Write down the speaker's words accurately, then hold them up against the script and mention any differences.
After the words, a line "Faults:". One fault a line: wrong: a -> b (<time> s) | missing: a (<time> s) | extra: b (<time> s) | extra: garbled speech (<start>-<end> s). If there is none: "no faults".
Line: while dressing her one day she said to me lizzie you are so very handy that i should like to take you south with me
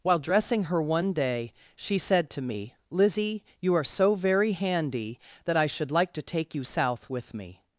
while dressing her one day she said to me lizzie you are so very handy that i should like to take you south with me
Faults:
no faults